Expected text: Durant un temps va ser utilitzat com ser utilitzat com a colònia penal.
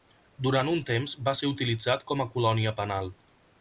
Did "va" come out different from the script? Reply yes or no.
no